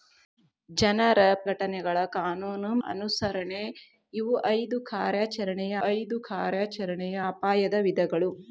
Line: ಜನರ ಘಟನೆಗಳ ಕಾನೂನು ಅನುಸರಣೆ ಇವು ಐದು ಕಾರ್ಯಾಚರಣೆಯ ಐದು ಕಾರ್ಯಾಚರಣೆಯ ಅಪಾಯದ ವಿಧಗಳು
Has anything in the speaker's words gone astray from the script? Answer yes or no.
no